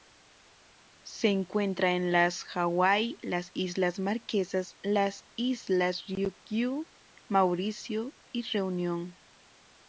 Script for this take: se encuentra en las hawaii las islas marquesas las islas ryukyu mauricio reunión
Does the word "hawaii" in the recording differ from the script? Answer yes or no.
no